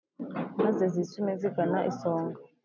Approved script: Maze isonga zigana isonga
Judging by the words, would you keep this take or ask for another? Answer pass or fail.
fail